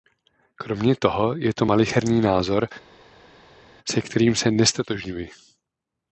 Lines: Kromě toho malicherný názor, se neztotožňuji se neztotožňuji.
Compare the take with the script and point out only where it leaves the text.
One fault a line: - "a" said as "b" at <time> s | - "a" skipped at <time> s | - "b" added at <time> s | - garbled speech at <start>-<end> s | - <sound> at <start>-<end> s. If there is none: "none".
- "je to" added at 1.4 s
- "neztotožňuji" said as "kterým" at 4.0 s